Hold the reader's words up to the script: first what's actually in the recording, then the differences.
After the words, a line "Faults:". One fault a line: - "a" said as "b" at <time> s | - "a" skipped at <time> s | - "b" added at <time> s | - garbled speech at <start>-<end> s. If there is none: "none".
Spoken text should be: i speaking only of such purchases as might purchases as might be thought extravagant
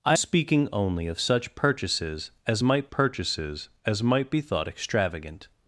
i speaking only of such purchases as might purchases as might be thought extravagant
Faults:
none